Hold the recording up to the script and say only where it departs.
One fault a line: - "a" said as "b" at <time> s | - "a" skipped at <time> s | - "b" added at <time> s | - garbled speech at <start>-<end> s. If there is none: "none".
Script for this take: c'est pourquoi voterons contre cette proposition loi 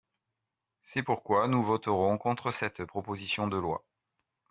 - "nous" added at 1.5 s
- "de" added at 3.5 s